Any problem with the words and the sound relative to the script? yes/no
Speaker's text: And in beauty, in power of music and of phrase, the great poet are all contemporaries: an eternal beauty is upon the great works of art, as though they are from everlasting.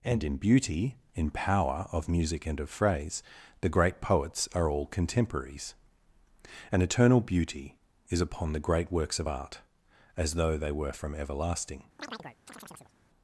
yes